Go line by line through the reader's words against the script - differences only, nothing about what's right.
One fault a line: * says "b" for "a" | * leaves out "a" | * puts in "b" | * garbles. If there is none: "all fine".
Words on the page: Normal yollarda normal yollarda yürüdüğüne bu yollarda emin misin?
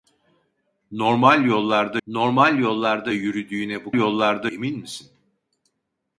all fine